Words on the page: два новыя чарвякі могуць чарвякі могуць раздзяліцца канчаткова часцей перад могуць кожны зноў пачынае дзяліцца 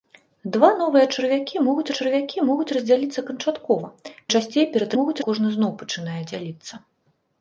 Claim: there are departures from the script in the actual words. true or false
false